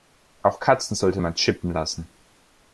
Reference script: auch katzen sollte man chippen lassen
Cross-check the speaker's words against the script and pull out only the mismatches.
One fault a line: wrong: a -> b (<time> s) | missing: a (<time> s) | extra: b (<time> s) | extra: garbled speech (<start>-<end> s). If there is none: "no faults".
no faults